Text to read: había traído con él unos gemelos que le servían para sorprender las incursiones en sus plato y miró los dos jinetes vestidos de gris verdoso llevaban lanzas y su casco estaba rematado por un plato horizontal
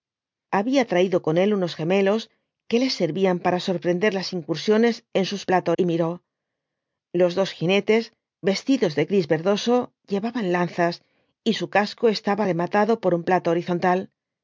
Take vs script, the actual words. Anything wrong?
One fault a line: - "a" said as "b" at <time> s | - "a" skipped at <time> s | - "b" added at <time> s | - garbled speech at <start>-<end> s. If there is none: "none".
none